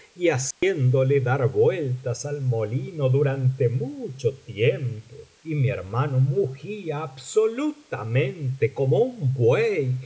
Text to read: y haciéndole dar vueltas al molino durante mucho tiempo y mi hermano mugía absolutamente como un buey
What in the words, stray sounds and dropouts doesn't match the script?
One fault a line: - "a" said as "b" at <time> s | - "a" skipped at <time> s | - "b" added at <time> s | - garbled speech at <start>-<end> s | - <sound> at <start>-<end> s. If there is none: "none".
- dropout at 0.5-0.6 s